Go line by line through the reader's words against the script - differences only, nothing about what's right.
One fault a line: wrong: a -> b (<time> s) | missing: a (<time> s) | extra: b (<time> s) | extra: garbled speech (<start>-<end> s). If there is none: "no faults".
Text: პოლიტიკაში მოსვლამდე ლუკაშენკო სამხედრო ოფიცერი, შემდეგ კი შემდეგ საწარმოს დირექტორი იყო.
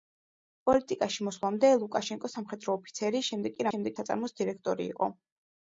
no faults